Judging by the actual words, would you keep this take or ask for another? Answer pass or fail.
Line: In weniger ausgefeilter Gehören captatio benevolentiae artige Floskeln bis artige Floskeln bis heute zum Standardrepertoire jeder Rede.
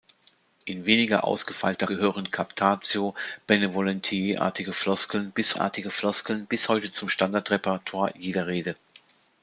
pass